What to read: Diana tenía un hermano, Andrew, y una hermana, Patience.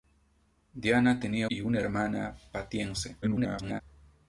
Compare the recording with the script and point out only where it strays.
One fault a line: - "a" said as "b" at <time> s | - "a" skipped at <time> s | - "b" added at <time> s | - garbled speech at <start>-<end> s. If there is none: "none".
- "un hermano Andrew" skipped at 1.5 s
- garbled speech at 3.2-3.8 s